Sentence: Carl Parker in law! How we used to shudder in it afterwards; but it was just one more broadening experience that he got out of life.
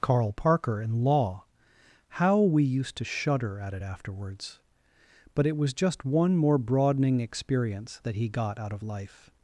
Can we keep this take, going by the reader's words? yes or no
no